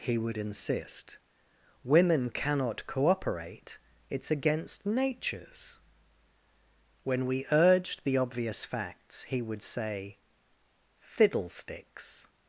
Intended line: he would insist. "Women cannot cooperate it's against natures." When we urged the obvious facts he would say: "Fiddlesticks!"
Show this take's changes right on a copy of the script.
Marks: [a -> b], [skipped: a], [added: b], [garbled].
he would insist. "Women cannot cooperate it's against natures." When we urged the obvious facts he would say: "Fiddlesticks!"